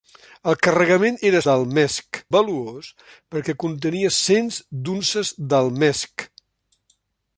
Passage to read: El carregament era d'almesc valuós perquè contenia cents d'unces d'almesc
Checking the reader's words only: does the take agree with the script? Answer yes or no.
yes